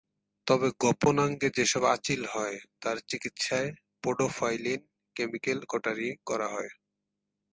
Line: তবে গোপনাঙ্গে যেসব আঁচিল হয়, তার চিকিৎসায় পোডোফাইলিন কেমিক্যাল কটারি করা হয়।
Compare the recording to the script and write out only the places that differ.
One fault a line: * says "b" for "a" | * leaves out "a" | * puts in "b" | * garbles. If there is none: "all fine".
all fine